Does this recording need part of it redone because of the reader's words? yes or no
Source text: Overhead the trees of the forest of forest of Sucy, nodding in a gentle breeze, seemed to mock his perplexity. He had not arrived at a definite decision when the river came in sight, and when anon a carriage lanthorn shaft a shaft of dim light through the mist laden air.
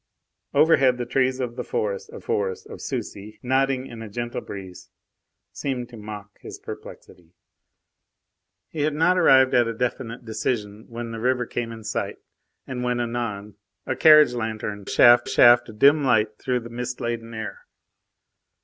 no